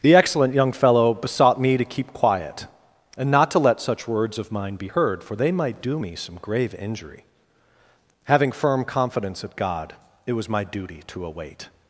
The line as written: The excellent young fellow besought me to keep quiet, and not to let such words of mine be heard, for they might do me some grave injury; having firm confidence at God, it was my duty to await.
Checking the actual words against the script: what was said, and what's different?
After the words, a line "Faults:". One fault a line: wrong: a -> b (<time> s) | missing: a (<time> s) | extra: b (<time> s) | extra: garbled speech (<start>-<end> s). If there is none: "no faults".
The excellent young fellow besought me to keep quiet, and not to let such words of mine be heard, for they might do me some grave injury; having firm confidence at God, it was my duty to await.
Faults:
no faults